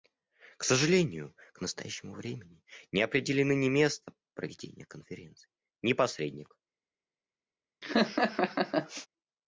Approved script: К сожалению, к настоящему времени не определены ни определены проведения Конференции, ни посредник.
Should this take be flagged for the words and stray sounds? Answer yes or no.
yes